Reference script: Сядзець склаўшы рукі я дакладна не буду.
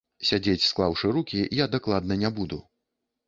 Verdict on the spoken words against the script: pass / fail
pass